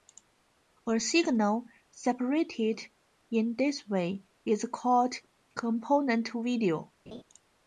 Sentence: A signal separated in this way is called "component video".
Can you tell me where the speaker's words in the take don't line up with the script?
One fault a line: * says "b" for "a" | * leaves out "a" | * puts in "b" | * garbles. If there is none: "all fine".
all fine